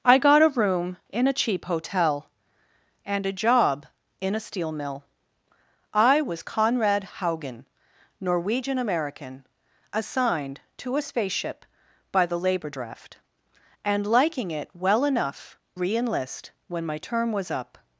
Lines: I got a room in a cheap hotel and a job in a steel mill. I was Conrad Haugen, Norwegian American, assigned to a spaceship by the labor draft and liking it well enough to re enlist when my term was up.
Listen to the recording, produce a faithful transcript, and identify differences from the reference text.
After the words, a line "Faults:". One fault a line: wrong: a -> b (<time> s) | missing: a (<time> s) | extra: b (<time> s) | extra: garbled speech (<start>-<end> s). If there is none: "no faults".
I got a room in a cheap hotel and a job in a steel mill. I was Conrad Haugen, Norwegian American, assigned to a spaceship by the labor draft and liking it well enough re enlist when my term was up.
Faults:
missing: to (15.6 s)